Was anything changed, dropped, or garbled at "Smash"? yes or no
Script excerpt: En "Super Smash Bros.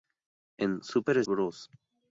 yes